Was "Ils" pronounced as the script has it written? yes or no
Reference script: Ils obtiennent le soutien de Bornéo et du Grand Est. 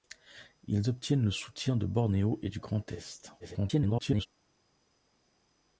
yes